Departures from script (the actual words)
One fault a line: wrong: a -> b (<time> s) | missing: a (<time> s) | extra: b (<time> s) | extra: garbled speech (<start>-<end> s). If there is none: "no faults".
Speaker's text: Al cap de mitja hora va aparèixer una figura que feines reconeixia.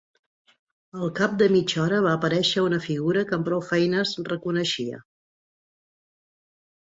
extra: amb prou (3.4 s)